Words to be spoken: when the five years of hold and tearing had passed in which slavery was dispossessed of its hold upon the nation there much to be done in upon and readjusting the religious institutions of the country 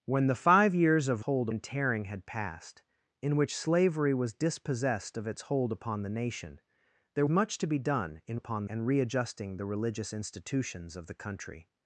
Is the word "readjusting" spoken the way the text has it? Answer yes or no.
yes